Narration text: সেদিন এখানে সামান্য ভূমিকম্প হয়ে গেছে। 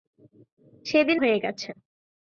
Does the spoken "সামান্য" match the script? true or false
false